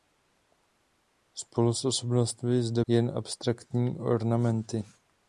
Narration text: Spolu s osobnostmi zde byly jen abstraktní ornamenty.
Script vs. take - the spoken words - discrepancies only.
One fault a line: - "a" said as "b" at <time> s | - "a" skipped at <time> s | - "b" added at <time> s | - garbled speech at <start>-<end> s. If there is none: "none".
- "byly" skipped at 2.9 s